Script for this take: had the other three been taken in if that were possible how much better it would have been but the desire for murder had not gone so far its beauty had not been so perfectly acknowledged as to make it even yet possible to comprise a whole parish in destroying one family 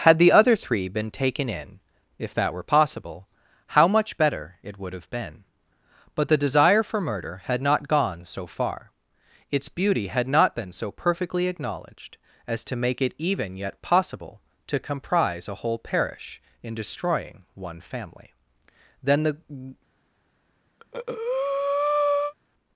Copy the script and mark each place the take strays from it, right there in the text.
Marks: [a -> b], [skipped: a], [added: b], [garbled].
had the other three been taken in if that were possible how much better it would have been but the desire for murder had not gone so far its beauty had not been so perfectly acknowledged as to make it even yet possible to comprise a whole parish in destroying one family [added: then the]